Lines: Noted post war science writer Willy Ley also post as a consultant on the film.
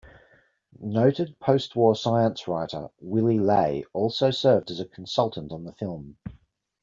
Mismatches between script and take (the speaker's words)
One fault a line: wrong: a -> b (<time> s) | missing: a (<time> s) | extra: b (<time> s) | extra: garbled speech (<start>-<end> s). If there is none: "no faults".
wrong: post -> served (4.3 s)